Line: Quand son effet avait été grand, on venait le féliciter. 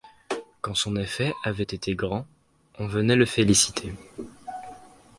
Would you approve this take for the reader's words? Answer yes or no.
yes